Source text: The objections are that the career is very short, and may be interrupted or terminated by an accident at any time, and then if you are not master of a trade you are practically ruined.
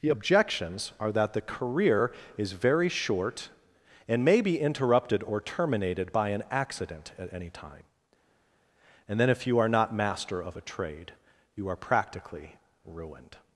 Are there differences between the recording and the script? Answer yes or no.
no